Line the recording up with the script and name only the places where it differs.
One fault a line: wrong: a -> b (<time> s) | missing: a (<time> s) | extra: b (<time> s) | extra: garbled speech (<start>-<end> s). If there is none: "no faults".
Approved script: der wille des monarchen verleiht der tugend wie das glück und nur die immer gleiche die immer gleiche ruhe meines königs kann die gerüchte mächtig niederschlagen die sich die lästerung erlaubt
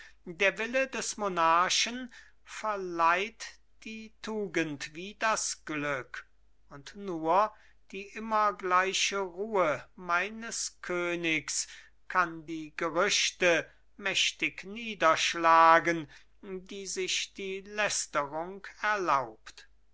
wrong: der -> die (3.8 s)
missing: die immer gleiche (9.2 s)